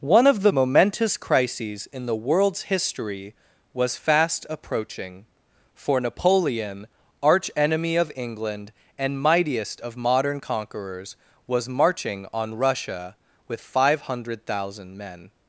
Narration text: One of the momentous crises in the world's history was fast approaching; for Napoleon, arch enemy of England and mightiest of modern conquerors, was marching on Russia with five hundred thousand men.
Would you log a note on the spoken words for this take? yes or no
no